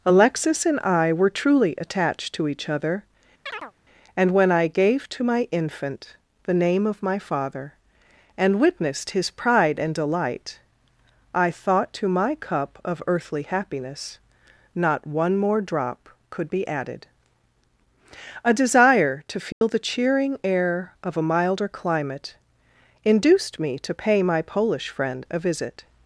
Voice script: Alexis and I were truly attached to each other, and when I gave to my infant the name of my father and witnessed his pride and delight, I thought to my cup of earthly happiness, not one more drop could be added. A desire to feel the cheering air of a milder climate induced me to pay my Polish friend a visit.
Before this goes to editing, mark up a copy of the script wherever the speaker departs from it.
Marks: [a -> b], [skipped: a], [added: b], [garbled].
Alexis and I were truly attached to each other, and when I gave to my infant the name of my father and witnessed his pride and delight, I thought to my cup of earthly happiness, not one more drop could be added. A desire to feel the cheering air of a milder climate induced me to pay my Polish friend a visit.